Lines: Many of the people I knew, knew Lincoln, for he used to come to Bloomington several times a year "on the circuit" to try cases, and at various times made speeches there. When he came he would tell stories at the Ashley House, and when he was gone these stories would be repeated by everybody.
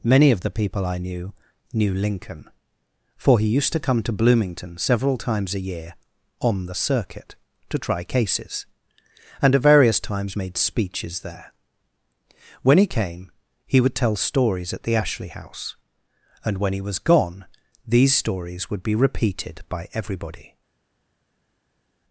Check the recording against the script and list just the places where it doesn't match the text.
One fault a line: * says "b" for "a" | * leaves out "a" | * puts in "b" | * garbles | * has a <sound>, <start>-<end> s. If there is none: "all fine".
all fine